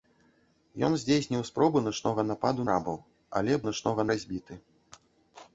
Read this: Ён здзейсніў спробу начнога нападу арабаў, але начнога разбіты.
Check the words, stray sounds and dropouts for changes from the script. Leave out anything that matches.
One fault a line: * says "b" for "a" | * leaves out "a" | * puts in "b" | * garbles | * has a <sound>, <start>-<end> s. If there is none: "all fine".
all fine